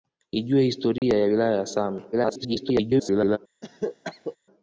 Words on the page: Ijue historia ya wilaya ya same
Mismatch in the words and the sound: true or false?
true